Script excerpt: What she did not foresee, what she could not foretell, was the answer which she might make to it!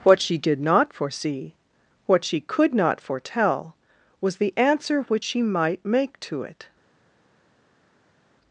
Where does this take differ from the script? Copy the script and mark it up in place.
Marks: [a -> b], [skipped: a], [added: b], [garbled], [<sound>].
What she did not foresee, what she could not foretell, was the answer which she might make to it!